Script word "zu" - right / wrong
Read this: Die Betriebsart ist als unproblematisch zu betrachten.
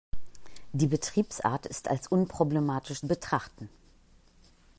wrong